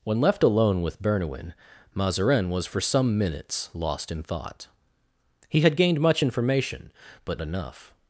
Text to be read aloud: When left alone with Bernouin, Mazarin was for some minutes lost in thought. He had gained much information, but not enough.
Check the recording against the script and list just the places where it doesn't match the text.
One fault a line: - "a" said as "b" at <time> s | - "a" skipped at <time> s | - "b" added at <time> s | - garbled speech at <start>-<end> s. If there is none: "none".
- "not" skipped at 7.4 s